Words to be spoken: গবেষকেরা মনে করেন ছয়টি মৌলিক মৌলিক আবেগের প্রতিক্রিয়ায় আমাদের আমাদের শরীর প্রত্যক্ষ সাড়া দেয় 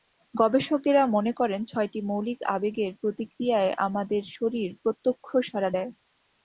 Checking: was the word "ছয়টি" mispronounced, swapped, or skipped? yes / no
no